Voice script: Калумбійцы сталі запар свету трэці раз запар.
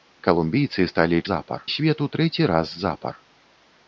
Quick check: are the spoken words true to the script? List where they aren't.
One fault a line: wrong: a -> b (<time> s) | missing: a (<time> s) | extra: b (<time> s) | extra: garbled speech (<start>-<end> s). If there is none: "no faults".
no faults